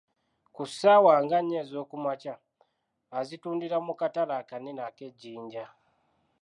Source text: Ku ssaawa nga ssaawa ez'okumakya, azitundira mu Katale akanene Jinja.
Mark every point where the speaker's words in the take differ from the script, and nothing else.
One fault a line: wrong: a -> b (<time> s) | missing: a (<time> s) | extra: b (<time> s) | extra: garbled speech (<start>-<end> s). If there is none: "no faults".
wrong: ssaawa -> nnya (1.4 s)
extra: ak'e (4.9 s)